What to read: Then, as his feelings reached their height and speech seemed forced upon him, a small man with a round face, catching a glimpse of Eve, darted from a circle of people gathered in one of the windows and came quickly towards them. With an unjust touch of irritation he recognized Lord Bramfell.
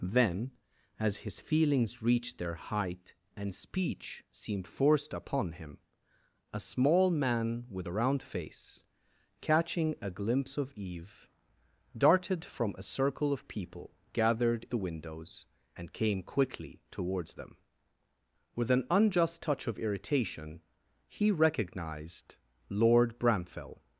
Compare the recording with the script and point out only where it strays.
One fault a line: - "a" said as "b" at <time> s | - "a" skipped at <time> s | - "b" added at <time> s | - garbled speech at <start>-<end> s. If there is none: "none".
- "in one of" skipped at 14.7 s